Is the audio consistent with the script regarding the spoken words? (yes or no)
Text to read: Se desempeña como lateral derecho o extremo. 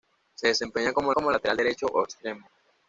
no